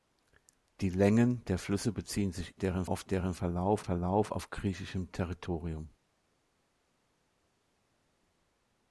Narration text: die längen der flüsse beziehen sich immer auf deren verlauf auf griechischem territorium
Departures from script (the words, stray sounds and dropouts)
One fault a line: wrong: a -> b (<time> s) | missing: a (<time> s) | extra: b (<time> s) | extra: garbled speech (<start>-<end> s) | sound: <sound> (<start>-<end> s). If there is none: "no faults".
wrong: immer -> deren (2.5 s)
extra: verlauf (3.8 s)